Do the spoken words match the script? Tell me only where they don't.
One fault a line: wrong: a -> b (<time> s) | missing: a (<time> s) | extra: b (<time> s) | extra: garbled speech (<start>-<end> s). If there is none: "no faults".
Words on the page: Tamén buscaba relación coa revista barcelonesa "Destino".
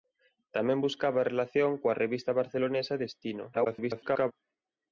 extra: garbled speech (3.5-4.3 s)